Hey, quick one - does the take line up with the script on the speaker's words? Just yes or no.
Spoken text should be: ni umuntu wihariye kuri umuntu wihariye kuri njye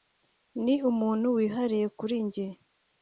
no